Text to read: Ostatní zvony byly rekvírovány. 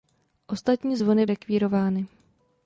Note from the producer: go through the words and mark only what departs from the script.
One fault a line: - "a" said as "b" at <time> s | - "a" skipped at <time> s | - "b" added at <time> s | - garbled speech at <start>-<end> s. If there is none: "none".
- "byly" skipped at 1.3 s